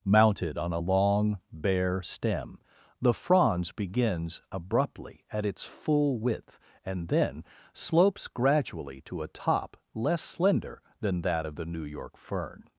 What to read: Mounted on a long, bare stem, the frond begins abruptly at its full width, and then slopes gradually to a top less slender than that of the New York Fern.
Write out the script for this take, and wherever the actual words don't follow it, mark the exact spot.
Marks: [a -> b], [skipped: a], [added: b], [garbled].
Mounted on a long, bare stem, the [frond -> fronds] begins abruptly at its full width, and then slopes gradually to a top less slender than that of the New York Fern.